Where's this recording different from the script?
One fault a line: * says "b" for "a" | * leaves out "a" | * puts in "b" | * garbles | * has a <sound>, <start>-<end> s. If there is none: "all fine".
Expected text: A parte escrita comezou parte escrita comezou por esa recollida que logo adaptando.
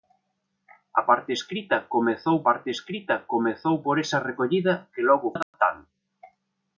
* has a dropout, 5.4-5.5 s